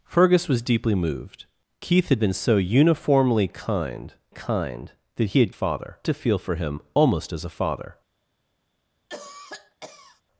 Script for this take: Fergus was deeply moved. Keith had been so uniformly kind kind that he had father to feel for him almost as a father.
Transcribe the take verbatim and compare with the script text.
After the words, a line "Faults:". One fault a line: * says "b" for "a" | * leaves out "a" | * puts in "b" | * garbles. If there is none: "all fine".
Fergus was deeply moved. Keith had been so uniformly kind kind that he had father to feel for him almost as a father.
Faults:
all fine